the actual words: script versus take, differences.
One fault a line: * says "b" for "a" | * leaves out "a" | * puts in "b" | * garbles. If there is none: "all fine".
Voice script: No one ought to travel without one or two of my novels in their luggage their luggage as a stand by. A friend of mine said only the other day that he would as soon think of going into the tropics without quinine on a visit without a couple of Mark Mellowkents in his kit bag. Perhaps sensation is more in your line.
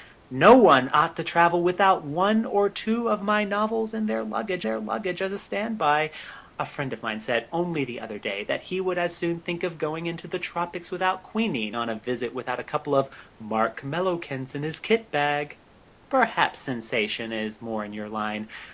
all fine